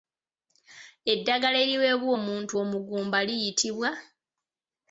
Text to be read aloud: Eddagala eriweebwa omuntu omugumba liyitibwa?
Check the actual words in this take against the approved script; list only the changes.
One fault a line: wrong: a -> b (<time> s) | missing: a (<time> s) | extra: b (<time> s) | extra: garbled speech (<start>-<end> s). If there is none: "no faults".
no faults